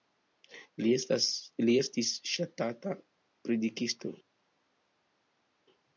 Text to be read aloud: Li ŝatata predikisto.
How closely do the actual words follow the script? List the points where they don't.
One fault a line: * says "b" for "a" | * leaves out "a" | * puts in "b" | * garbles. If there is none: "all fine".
* puts in "estis"